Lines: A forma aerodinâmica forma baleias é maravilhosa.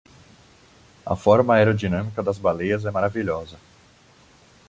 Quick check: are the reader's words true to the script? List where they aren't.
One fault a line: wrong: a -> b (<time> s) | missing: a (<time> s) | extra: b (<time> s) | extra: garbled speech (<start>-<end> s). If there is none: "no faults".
wrong: forma -> das (2.2 s)